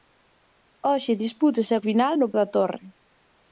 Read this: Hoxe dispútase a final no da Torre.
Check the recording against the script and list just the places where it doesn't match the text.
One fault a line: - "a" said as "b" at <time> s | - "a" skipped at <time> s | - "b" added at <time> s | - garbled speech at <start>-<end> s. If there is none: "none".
none